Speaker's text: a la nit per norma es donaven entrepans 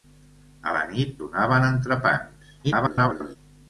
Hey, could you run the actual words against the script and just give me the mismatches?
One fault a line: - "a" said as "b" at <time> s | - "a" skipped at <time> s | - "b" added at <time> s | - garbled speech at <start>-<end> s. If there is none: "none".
- "per norma es" skipped at 1.2 s
- garbled speech at 2.6-3.4 s